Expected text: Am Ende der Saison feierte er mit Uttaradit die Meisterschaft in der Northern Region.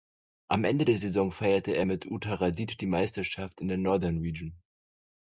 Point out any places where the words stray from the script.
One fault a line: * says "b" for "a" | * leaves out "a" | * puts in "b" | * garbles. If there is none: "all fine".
all fine